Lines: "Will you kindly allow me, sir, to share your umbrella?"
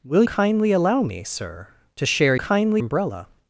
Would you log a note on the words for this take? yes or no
yes